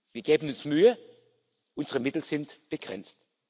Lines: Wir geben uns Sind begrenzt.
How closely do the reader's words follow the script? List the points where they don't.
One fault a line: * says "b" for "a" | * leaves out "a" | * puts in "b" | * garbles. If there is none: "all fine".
* puts in "Mühe unsere Mittel"